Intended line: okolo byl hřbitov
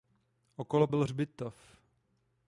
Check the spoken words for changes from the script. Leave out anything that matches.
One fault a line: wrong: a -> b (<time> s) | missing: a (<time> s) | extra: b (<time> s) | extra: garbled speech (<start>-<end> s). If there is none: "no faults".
no faults